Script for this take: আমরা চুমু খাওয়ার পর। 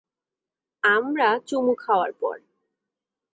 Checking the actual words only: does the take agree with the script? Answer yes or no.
yes